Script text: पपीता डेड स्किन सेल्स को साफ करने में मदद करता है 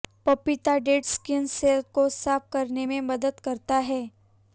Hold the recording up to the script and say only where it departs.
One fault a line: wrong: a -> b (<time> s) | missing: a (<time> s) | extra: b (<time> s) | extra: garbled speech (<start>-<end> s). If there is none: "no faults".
no faults